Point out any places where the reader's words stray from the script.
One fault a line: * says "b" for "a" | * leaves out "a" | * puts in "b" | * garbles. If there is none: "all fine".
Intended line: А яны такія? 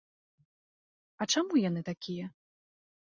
* puts in "чаму"